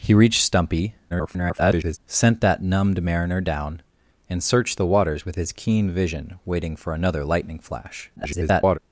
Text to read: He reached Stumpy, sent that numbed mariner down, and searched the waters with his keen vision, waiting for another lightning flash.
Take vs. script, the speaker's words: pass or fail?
fail